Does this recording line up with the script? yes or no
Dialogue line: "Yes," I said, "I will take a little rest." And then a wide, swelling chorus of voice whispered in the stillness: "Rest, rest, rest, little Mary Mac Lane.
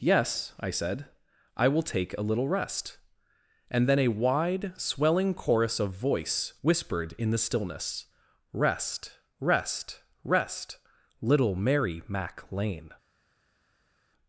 yes